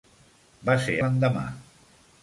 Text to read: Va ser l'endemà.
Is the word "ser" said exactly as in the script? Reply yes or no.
yes